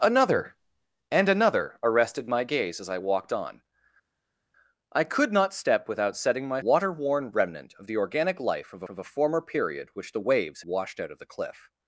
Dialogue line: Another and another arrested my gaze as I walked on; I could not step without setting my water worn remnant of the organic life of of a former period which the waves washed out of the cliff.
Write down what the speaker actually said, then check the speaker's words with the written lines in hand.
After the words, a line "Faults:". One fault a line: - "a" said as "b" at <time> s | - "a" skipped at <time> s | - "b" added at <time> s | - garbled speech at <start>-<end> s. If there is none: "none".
Another and another arrested my gaze as I walked on; I could not step without setting my water worn remnant of the organic life of of a former period which the waves washed out of the cliff.
Faults:
none